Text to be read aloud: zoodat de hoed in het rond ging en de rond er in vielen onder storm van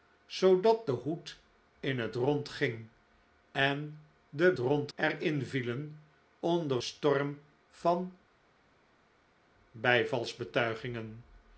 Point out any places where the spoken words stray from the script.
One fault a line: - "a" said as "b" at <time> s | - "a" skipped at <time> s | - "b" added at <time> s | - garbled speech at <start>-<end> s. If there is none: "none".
none